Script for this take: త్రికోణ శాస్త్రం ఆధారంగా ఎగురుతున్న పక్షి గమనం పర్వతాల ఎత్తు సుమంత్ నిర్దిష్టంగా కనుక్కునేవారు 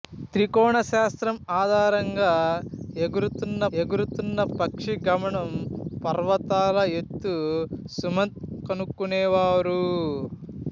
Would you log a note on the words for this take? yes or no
yes